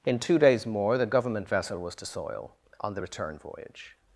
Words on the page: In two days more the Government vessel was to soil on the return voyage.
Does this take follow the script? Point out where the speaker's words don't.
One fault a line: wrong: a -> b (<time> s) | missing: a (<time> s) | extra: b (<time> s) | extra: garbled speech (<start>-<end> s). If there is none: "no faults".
no faults